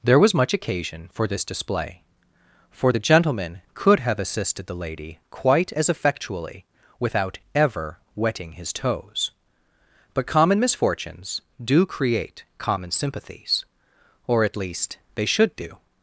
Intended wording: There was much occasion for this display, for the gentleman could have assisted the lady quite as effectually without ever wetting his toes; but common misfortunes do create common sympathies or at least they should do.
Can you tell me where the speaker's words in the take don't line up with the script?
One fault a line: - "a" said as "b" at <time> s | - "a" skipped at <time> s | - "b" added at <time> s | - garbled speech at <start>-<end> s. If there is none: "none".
none